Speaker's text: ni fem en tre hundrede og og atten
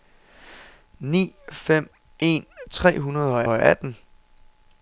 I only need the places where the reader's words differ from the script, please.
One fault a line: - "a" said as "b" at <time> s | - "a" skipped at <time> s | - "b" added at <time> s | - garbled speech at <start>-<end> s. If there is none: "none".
none